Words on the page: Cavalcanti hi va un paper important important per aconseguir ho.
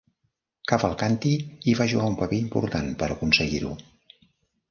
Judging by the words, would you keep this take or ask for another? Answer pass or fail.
fail